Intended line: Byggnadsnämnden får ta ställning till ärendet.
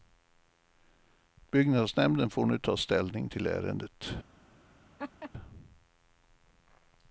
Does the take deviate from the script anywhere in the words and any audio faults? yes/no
yes